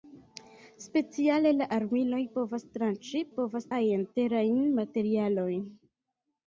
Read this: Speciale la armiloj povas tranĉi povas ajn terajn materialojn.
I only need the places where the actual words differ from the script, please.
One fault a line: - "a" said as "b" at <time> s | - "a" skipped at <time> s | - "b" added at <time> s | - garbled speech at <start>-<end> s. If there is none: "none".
none